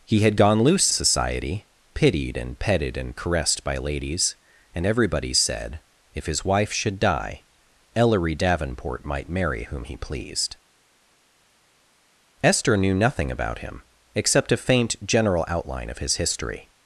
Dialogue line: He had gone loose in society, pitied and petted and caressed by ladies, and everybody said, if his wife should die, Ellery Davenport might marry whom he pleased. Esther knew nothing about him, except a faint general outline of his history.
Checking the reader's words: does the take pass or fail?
fail